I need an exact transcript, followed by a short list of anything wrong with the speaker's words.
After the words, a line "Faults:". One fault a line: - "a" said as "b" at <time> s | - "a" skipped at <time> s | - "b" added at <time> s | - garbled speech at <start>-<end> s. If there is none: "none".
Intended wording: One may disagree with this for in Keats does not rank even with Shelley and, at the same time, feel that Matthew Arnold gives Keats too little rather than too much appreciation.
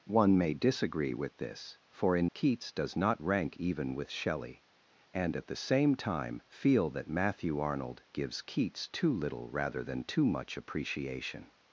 One may disagree with this for in Keats does not rank even with Shelley and, at the same time, feel that Matthew Arnold gives Keats too little rather than too much appreciation.
Faults:
none